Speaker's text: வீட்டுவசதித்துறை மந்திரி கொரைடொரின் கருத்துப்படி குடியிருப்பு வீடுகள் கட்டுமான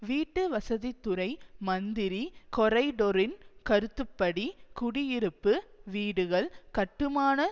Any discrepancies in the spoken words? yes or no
no